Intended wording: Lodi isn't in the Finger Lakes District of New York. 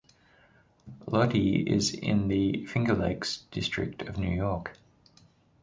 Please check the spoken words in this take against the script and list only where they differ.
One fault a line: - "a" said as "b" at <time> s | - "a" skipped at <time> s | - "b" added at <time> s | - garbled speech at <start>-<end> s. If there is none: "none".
- "isn't" said as "is" at 1.7 s